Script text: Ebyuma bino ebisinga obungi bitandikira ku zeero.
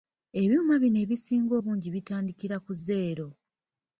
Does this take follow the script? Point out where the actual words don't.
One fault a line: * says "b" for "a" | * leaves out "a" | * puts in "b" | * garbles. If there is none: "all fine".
all fine